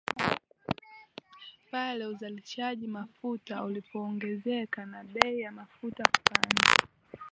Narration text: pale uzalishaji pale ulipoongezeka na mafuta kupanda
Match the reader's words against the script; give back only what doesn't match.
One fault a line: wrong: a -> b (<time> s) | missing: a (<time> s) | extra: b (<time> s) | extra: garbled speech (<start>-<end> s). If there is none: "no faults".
wrong: pale -> mafuta (2.9 s)
extra: bei ya (5.0 s)